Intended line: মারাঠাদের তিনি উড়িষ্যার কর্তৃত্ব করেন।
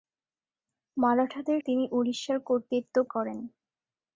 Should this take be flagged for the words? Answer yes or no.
no